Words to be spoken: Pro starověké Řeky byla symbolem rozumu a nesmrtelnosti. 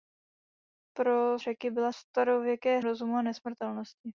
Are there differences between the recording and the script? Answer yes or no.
yes